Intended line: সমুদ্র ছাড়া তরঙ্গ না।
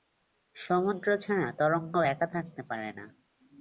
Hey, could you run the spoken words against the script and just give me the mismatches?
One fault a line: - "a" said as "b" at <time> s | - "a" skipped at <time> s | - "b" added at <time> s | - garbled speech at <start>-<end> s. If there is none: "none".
- "একা থাকতে পারে" added at 2.1 s